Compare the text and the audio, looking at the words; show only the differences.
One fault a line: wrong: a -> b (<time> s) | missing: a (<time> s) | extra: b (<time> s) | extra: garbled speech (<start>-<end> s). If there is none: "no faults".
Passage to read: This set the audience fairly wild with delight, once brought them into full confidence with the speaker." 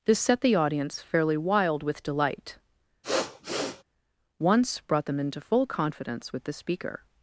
no faults